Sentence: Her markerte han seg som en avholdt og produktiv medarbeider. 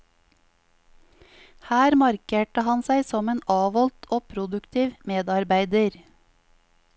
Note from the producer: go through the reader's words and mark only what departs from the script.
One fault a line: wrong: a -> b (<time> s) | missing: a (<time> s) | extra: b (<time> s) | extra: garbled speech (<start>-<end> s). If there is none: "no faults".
no faults